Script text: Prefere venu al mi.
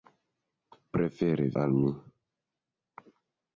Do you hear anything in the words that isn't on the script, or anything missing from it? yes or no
yes